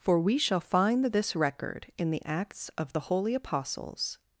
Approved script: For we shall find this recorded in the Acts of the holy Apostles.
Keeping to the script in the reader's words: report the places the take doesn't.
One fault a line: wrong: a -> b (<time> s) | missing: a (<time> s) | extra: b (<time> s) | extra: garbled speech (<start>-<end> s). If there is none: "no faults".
wrong: recorded -> record (1.4 s)